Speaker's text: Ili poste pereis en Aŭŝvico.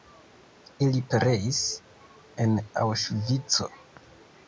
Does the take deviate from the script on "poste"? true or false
true